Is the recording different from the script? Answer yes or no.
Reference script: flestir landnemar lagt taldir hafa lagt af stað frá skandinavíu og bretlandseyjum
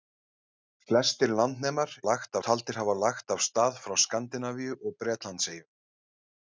no